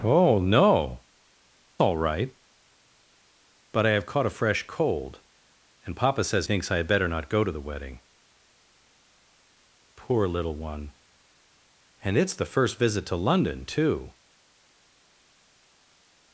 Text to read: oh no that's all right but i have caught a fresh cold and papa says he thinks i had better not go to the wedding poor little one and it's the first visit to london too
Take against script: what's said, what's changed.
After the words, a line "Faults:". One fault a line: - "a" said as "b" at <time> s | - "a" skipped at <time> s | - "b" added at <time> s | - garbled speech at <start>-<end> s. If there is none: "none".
oh no all right but i have caught a fresh cold and papa says thinks i had better not go to the wedding poor little one and it's the first visit to london too
Faults:
- "that's" skipped at 1.0 s
- "he" skipped at 6.5 s